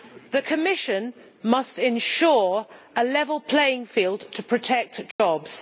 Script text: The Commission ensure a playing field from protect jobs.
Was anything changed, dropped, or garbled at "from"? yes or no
yes